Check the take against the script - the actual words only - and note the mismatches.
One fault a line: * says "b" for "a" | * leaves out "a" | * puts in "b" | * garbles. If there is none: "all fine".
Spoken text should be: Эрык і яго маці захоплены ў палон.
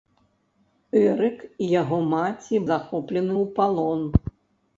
all fine